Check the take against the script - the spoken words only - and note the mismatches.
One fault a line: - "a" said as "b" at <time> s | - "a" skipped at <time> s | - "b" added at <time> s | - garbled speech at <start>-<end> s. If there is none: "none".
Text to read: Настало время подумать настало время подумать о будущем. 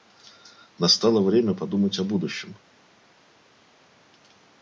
- "настало время подумать" skipped at 2.0 s